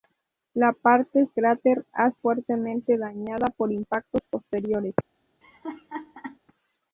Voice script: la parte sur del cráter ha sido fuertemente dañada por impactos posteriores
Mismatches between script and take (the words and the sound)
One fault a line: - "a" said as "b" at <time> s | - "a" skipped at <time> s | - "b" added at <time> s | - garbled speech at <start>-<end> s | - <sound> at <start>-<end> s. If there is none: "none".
- "sur del" skipped at 1.3 s
- "sido" skipped at 2.1 s
- laugh at 5.4-6.4 s